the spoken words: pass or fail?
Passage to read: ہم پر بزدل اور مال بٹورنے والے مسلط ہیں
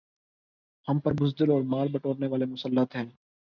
pass